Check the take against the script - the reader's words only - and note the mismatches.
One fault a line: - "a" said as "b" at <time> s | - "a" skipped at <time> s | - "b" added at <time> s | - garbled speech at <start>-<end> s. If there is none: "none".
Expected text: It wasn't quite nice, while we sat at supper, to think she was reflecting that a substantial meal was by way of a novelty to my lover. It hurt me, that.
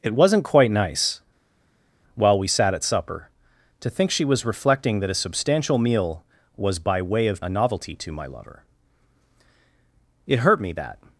none